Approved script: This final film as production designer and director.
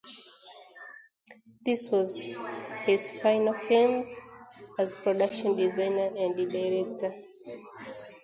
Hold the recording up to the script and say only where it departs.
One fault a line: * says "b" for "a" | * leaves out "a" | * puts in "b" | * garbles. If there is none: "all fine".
* puts in "was his"